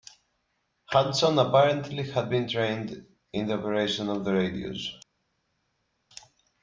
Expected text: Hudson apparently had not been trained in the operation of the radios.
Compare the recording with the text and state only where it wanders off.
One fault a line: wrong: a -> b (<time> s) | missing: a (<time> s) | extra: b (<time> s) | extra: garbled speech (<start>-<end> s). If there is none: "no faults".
missing: not (2.3 s)